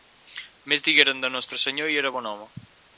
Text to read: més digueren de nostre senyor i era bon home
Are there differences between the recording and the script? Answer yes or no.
no